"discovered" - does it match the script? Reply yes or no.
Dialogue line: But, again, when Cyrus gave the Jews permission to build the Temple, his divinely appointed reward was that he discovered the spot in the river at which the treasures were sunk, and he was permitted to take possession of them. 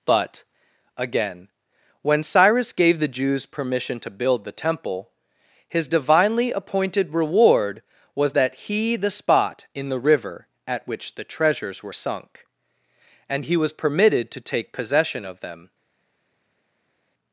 no